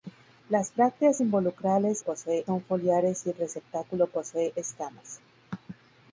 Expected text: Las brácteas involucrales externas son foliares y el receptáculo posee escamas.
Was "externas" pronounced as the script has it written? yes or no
no